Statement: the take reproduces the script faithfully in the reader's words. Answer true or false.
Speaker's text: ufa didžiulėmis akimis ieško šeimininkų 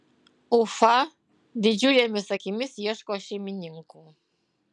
true